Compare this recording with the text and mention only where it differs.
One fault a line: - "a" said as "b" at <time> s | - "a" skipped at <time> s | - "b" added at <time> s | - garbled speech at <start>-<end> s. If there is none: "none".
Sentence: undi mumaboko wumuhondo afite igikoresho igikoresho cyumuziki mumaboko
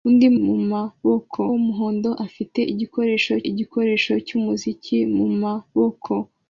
none